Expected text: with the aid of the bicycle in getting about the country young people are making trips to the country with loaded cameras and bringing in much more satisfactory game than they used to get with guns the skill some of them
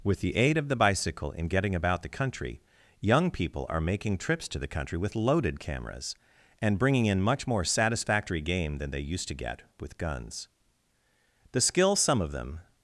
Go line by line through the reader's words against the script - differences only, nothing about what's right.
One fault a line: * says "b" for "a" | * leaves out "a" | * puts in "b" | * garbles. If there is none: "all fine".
all fine